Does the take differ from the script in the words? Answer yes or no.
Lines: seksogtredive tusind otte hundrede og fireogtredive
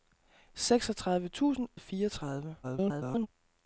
yes